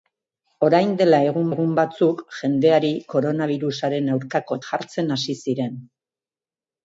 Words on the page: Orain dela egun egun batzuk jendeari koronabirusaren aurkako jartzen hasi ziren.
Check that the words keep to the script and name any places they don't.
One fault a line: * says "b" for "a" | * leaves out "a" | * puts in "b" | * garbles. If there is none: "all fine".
all fine